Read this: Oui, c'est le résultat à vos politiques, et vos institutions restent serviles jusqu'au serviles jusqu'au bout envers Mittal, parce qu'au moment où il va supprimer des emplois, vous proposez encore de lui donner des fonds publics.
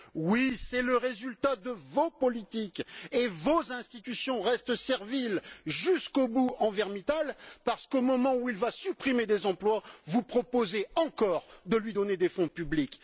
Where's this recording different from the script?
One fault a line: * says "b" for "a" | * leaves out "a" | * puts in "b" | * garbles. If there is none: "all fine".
* says "de" for "à"
* leaves out "serviles jusqu'au"